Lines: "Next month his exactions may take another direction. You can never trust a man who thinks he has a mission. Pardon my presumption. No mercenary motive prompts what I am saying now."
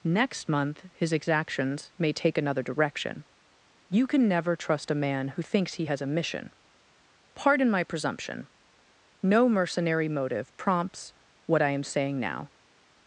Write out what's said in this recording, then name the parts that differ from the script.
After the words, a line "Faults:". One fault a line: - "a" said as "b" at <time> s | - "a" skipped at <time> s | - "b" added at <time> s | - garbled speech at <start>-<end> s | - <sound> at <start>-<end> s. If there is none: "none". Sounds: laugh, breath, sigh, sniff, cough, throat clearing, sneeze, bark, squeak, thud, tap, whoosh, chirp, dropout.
"Next month his exactions may take another direction. You can never trust a man who thinks he has a mission. Pardon my presumption. No mercenary motive prompts what I am saying now."
Faults:
none